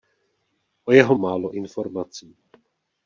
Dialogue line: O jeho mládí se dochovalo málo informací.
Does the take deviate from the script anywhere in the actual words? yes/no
yes